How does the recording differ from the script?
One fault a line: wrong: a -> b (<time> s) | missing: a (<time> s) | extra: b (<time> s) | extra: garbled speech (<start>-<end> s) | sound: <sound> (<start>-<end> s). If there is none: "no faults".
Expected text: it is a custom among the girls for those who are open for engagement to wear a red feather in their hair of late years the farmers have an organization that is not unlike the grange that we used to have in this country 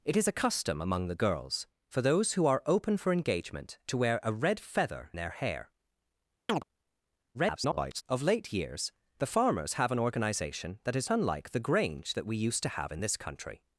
missing: in (5.1 s)
sound: chirp (6.5-6.6 s)
extra: garbled speech (7.3-8.0 s)
missing: not (11.1 s)